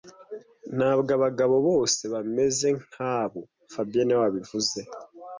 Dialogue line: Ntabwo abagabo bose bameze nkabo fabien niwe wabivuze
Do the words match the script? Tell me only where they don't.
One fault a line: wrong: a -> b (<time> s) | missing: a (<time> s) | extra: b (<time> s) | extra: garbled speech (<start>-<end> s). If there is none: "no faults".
no faults